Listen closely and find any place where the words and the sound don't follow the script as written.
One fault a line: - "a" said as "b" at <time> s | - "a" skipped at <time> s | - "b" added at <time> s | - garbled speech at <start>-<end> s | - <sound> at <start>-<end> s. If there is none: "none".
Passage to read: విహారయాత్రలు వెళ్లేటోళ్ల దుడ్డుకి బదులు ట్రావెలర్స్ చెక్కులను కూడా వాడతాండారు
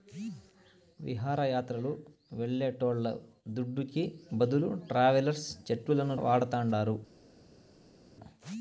- "కూడా" skipped at 6.2 s